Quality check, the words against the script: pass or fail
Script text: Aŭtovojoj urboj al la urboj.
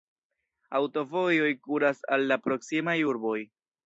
fail